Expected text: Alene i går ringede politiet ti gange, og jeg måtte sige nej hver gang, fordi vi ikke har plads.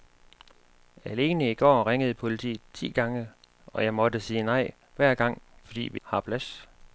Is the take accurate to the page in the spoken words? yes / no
no